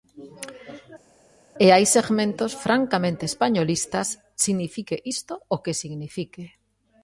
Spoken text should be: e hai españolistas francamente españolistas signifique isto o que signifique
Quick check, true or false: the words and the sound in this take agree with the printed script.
false